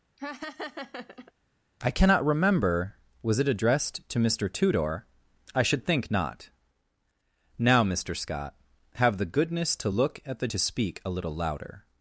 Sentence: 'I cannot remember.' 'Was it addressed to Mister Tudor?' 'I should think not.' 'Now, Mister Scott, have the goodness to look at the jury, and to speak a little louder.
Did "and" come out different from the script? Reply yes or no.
yes